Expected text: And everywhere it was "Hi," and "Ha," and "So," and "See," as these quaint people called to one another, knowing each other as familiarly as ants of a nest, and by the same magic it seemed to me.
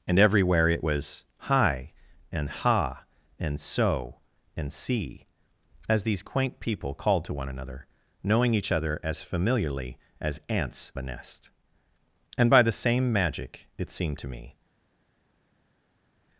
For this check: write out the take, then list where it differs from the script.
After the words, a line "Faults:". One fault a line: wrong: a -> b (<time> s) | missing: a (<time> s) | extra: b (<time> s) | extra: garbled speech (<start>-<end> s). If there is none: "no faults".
And everywhere it was "Hi," and "Ha," and "So," and "See," as these quaint people called to one another, knowing each other as familiarly as ants a nest, and by the same magic it seemed to me.
Faults:
missing: of (10.9 s)